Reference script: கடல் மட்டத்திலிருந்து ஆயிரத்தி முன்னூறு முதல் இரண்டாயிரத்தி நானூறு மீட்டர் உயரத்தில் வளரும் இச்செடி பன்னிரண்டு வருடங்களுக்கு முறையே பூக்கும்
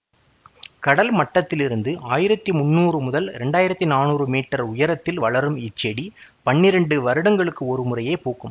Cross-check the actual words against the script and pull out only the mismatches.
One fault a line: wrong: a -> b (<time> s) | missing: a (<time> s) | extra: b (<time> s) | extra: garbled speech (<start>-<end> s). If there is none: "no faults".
extra: ஒரு (7.7 s)